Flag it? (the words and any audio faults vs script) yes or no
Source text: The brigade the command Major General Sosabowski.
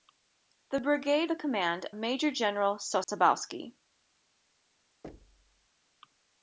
yes